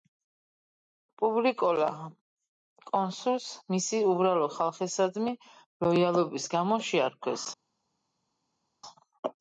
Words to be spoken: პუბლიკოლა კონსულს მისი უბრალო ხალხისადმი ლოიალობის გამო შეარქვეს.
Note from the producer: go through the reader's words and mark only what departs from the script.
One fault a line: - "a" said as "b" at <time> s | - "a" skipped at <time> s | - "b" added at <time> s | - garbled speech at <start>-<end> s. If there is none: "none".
none